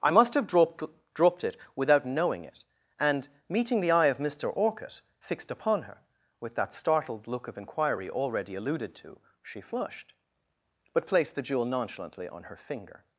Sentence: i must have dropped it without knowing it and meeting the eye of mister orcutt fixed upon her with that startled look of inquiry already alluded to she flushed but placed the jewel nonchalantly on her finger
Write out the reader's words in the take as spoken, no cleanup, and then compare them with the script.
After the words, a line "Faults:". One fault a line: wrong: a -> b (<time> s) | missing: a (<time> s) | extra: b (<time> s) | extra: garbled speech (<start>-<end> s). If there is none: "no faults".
i must have dropped dropped it without knowing it and meeting the eye of mister orcutt fixed upon her with that startled look of inquiry already alluded to she flushed but placed the jewel nonchalantly on her finger
Faults:
extra: dropped (1.1 s)